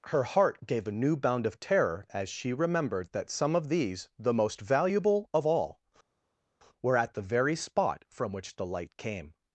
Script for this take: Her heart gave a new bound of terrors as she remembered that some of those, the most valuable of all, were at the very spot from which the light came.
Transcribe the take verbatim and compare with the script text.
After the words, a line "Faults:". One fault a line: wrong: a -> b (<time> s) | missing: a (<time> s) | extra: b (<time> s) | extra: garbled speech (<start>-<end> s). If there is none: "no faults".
Her heart gave a new bound of terror as she remembered that some of these, the most valuable of all, were at the very spot from which the light came.
Faults:
wrong: terrors -> terror (1.6 s)
wrong: those -> these (3.7 s)